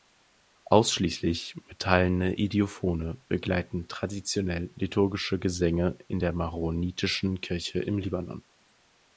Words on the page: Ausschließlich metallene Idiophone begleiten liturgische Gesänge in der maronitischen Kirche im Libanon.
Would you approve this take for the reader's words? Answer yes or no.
no